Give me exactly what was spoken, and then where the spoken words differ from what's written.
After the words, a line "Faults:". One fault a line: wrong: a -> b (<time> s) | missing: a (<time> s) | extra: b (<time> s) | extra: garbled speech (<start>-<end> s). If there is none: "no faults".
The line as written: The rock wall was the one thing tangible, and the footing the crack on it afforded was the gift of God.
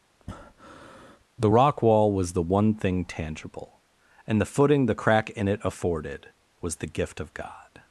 The rock wall was the one thing tangible, and the footing the crack in it afforded was the gift of God.
Faults:
wrong: on -> in (5.3 s)